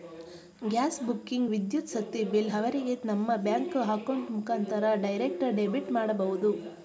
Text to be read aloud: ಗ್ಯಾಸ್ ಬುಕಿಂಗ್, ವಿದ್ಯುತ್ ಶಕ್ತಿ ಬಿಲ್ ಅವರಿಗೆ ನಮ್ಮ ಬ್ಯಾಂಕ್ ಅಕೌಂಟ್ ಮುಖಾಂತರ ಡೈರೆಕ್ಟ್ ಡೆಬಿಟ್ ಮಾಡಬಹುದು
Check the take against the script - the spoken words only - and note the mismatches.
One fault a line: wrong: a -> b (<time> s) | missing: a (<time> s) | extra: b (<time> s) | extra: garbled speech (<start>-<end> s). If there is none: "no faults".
no faults